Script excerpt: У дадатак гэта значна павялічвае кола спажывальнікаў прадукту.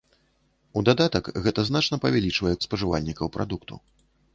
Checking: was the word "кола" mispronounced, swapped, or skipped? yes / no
yes